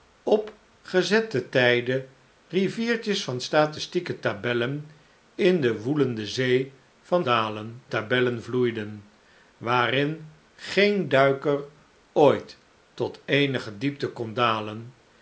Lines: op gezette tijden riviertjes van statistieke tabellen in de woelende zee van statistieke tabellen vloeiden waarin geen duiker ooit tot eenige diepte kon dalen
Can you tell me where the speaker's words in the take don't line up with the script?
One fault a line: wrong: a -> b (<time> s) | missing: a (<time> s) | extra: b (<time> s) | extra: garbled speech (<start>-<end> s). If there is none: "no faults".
wrong: statistieke -> dalen (7.2 s)